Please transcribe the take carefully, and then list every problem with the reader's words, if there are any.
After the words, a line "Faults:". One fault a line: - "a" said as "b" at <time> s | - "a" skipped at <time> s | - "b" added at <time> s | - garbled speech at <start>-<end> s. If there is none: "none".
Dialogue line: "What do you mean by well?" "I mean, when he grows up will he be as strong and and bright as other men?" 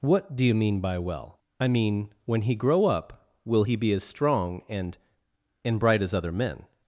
"What do you mean by well?" "I mean, when he grow up will he be as strong and and bright as other men?"
Faults:
- "grows" said as "grow" at 2.5 s